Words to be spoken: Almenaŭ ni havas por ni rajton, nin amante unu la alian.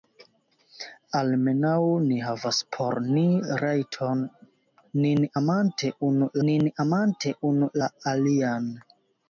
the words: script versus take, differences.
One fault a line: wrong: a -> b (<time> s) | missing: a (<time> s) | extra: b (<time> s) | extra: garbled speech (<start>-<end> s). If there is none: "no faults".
extra: nin amante unu (6.5 s)